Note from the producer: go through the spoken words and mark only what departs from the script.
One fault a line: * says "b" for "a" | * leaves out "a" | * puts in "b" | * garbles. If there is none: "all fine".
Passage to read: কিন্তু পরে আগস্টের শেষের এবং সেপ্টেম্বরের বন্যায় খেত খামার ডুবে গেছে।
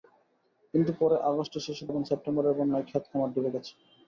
all fine